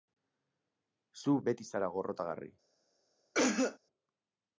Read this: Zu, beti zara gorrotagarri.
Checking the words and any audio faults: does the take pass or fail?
fail